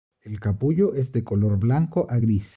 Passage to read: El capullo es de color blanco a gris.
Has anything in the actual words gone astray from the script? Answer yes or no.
no